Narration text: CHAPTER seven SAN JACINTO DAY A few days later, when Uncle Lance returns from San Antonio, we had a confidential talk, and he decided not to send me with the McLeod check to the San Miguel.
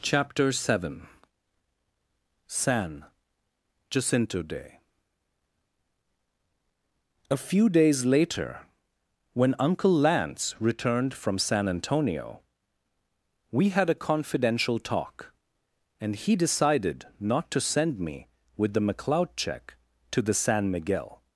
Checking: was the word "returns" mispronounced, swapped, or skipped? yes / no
yes